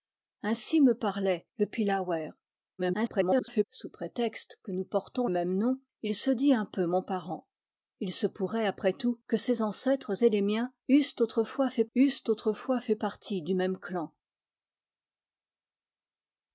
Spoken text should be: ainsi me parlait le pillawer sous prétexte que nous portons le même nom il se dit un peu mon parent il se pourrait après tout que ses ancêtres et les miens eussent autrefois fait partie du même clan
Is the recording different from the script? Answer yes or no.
yes